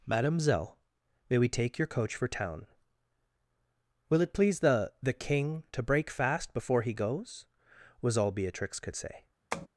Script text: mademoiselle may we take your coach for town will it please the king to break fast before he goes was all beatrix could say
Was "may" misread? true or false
false